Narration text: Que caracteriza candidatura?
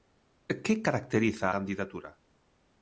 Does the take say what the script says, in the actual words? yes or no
yes